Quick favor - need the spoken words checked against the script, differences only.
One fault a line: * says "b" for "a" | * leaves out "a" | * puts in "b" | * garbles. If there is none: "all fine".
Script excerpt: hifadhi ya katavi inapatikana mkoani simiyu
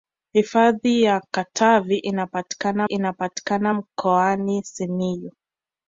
* puts in "inapatikana"